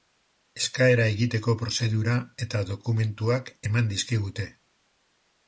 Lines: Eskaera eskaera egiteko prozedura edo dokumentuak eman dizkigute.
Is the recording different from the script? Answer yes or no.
yes